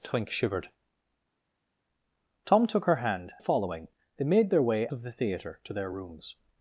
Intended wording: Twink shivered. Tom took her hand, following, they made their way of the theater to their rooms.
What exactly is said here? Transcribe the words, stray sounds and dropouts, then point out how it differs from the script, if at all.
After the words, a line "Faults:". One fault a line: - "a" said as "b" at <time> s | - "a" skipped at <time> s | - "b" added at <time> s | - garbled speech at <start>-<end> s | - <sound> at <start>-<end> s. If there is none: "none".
Twink shivered. Tom took her hand, following, they made their way of the theater to their rooms.
Faults:
none